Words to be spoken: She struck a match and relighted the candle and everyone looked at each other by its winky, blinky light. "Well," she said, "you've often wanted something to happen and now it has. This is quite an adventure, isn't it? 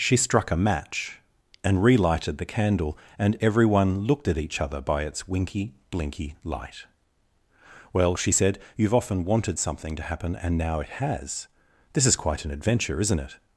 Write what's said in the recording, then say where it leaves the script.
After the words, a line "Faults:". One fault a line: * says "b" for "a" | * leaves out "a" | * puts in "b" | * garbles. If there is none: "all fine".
She struck a match and relighted the candle and everyone looked at each other by its winky, blinky light. "Well," she said, "you've often wanted something to happen and now it has. This is quite an adventure, isn't it?
Faults:
all fine